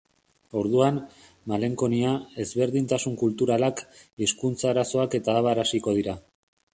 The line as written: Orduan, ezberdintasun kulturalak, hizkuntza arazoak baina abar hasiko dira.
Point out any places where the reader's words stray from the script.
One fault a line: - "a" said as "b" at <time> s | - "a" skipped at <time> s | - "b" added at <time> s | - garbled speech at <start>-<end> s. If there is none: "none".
- "malenkonia" added at 1.5 s
- "baina" said as "eta" at 5.2 s